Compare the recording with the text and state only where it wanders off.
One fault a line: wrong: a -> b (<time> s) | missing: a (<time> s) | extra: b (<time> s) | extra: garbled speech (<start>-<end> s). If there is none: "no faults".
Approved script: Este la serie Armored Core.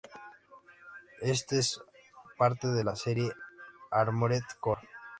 extra: es parte de (1.6 s)